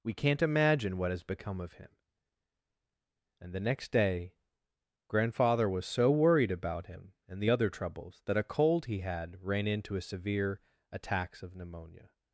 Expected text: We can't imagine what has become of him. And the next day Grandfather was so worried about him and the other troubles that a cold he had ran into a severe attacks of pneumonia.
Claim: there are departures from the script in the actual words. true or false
false